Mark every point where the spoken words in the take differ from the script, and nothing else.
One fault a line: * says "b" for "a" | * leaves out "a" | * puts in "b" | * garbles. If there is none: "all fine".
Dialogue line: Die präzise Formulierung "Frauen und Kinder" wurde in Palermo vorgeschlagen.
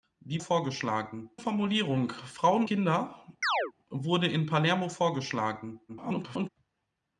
* says "vorgeschlagen" for "präzise"
* leaves out "und"
* garbles